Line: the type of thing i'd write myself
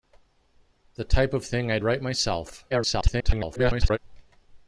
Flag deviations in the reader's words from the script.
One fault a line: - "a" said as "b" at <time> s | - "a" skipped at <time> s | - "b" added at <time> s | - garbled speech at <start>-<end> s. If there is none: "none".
- garbled speech at 2.7-4.0 s